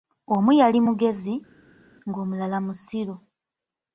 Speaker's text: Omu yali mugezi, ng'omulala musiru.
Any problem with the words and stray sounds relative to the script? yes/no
no